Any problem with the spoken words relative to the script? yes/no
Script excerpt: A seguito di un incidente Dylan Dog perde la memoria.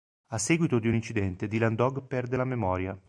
no